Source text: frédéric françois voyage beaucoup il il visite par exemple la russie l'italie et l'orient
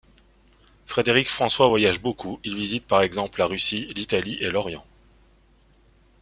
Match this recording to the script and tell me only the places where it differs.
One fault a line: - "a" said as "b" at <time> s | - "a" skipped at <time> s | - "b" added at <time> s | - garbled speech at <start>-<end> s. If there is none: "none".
- "il" skipped at 2.6 s